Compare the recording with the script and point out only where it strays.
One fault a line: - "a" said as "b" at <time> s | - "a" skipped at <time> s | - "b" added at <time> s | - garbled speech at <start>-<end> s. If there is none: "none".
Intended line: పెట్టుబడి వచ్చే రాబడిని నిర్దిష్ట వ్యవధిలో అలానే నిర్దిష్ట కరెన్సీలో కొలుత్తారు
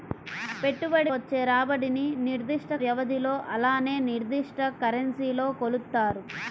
none